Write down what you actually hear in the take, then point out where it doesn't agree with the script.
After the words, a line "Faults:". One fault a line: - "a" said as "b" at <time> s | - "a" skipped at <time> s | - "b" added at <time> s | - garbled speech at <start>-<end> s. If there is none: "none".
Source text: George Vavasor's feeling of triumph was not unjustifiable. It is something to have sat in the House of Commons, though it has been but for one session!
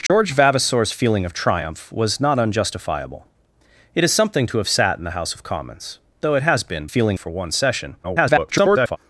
George Vavasor's feeling of triumph was not unjustifiable. It is something to have sat in the House of Commons, though it has been feeling for one session! [garbled]
Faults:
- "but" said as "feeling" at 6.8 s
- garbled speech at 8.0-9.0 s